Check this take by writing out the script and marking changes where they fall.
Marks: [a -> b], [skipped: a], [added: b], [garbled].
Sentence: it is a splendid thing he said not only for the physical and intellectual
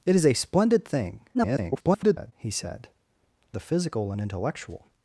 it is a splendid thing [garbled] he said [skipped: not only for] the physical and intellectual